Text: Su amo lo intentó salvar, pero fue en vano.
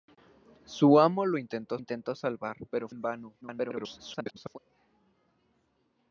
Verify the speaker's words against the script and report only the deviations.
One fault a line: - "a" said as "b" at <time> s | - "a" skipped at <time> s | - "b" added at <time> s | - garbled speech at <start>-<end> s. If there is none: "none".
- "intentó" added at 1.8 s
- "fue" skipped at 2.9 s
- garbled speech at 3.4-4.6 s